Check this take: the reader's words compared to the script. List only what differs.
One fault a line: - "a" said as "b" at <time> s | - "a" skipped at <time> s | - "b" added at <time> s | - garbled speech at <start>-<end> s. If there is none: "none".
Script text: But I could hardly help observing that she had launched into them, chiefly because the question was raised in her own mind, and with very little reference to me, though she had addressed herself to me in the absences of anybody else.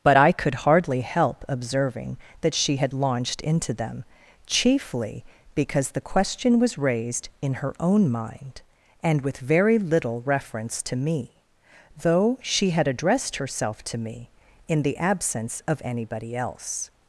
- "absences" said as "absence" at 15.0 s